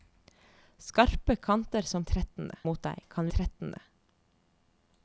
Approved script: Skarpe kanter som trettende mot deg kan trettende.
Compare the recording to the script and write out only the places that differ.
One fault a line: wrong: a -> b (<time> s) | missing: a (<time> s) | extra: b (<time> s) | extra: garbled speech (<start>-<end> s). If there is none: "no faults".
no faults